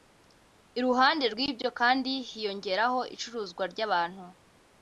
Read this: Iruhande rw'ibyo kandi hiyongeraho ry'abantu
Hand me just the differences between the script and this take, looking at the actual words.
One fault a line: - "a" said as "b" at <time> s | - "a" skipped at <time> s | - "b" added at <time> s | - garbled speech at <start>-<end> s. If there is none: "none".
- "icuruzwa" added at 3.1 s